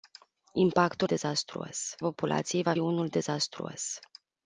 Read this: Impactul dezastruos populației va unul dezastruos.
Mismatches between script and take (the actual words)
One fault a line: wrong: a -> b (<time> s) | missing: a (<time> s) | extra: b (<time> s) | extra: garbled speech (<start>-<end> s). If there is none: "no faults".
no faults